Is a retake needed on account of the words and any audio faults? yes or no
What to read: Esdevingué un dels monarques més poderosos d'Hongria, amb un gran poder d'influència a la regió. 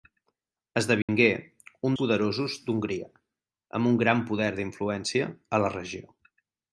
yes